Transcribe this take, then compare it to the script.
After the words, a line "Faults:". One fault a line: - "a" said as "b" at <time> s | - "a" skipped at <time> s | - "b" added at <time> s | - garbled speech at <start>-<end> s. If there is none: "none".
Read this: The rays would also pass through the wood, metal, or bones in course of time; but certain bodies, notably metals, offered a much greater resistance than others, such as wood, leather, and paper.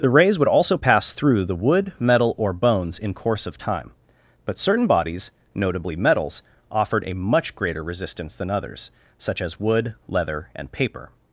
The rays would also pass through the wood, metal, or bones in course of time; but certain bodies, notably metals, offered a much greater resistance than others, such as wood, leather, and paper.
Faults:
none